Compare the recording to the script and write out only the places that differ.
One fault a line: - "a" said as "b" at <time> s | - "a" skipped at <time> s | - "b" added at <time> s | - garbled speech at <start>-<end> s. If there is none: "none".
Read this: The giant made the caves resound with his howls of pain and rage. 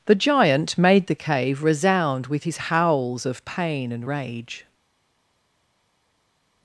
- "caves" said as "cave" at 1.1 s